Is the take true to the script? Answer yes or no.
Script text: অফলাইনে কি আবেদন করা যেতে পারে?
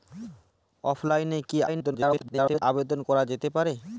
no